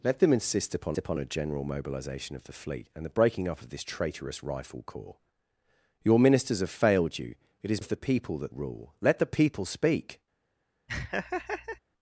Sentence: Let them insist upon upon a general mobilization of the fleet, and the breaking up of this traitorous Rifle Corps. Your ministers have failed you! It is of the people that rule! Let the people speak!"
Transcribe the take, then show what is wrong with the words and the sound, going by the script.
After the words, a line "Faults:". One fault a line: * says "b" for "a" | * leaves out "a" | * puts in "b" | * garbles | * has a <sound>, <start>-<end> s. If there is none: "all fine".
Let them insist upon upon a general mobilization of the fleet, and the breaking up of this traitorous Rifle Corps. Your ministers have failed you! It is of the people that rule! Let the people speak!"
Faults:
* has a laugh, 10.9-11.8 s